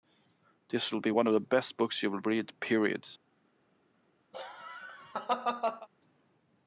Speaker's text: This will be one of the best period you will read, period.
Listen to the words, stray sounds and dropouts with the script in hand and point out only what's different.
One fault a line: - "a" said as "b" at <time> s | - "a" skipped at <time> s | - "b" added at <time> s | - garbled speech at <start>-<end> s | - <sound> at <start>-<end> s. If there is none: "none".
- "period" said as "books" at 1.8 s
- laugh at 4.3-5.9 s